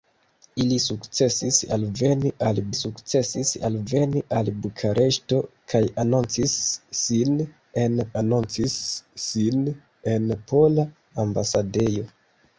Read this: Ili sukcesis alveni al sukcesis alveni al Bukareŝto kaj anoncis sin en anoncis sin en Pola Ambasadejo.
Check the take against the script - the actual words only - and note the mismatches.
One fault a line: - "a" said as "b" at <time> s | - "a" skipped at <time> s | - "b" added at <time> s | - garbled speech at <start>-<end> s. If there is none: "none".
none